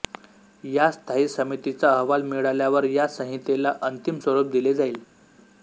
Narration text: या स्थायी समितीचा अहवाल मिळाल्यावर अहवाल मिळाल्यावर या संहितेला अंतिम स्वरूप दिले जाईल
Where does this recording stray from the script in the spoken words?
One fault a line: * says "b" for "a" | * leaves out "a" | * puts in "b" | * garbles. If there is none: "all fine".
* leaves out "अहवाल मिळाल्यावर"